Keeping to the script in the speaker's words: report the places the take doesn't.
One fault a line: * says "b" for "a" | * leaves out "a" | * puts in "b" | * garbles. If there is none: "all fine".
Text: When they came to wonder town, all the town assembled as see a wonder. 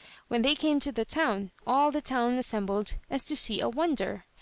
* says "the" for "wonder"
* puts in "to"